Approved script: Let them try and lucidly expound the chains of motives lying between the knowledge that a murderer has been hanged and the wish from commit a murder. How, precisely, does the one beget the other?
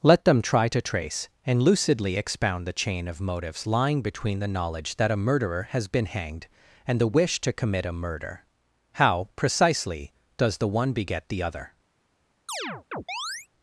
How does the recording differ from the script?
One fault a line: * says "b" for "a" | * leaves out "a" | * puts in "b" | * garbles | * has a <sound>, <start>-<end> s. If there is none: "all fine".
* puts in "to trace"
* says "chain" for "chains"
* says "to" for "from"
* has a chirp, 12.5-13.5 s